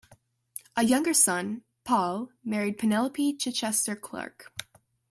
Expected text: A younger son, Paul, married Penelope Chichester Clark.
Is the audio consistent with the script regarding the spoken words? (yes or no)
yes